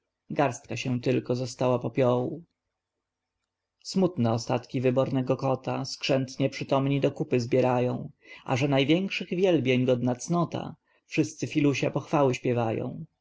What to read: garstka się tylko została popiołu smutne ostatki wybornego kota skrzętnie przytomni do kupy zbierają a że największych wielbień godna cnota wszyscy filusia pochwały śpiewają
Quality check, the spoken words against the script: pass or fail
pass